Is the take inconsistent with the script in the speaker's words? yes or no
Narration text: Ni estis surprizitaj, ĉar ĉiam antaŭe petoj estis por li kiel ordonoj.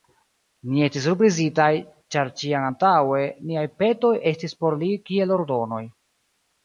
yes